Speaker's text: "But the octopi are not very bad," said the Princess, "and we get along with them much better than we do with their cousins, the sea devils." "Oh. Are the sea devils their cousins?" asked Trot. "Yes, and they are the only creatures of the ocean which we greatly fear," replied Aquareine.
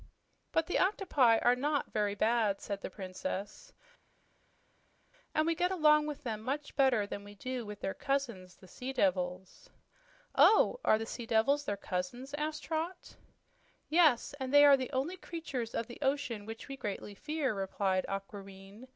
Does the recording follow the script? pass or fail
pass